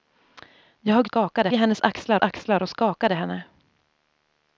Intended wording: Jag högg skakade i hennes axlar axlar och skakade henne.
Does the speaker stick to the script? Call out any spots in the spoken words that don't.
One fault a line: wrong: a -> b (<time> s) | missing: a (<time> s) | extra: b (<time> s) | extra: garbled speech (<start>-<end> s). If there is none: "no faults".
no faults